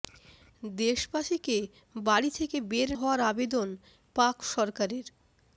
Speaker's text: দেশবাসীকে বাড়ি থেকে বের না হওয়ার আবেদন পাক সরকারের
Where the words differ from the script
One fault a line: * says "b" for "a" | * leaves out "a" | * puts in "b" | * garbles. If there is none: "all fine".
* leaves out "না"